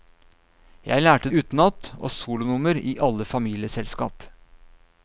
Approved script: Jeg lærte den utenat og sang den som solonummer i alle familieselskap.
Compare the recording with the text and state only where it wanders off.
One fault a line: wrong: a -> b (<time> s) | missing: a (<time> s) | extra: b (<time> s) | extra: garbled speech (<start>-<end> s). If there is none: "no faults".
missing: den (1.3 s)
missing: sang den som (2.1 s)